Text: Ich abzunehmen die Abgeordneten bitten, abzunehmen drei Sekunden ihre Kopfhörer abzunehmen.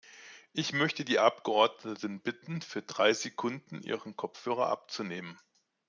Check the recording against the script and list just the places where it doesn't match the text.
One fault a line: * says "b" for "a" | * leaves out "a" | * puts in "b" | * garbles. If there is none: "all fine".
* says "möchte" for "abzunehmen"
* says "für" for "abzunehmen"